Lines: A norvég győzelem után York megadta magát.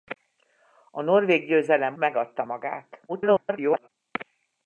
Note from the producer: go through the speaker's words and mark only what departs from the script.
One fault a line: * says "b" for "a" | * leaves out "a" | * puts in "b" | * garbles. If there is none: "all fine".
* leaves out "után York"
* garbles